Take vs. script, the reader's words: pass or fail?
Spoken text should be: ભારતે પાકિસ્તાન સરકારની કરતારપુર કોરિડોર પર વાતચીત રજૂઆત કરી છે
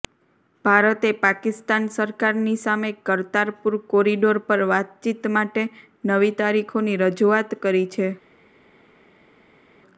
fail